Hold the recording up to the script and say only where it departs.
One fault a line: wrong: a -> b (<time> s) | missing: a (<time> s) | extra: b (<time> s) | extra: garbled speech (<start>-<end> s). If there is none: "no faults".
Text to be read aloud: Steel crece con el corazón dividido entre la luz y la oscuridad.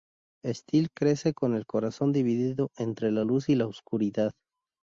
no faults